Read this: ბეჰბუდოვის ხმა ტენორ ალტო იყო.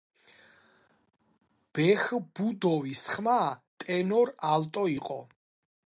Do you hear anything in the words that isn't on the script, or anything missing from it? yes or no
no